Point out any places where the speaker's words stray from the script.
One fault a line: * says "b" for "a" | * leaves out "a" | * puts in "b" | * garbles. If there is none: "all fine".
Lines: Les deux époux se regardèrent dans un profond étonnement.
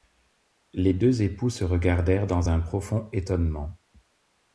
all fine